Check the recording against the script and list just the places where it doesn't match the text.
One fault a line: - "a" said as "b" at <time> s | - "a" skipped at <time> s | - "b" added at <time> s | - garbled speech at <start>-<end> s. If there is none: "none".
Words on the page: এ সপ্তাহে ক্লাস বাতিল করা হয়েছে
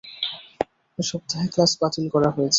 none